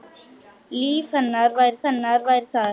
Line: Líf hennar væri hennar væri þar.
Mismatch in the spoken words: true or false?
false